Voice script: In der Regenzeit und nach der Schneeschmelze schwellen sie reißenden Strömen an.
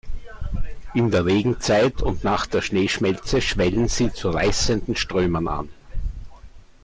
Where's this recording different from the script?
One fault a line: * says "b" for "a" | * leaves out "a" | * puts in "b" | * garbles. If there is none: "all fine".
* puts in "zu"